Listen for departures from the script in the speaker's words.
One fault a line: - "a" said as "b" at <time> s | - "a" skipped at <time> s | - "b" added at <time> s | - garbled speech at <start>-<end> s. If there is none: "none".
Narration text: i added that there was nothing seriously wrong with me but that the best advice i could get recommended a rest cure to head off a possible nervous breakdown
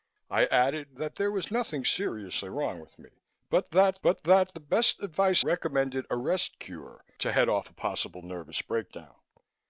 - "but that" added at 4.0 s
- "i could get" skipped at 5.4 s